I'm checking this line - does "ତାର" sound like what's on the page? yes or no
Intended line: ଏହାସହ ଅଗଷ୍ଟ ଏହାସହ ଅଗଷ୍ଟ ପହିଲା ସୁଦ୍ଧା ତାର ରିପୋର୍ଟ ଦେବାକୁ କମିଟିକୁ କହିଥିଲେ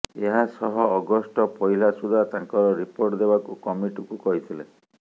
no